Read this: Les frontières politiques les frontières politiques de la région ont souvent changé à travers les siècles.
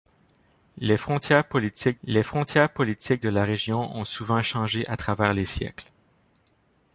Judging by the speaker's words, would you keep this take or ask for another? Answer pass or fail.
pass